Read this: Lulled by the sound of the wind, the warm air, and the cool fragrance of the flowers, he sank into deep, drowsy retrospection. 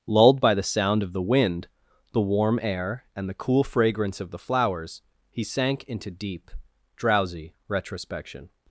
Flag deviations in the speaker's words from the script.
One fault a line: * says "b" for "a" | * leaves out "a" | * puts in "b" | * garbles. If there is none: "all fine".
all fine